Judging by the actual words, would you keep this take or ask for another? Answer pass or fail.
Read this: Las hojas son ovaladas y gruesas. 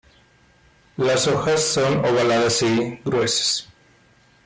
pass